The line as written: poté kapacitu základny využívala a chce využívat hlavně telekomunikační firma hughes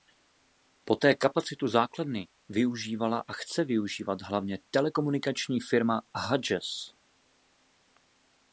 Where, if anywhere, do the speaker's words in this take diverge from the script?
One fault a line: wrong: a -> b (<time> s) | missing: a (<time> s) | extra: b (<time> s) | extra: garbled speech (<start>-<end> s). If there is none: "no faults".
no faults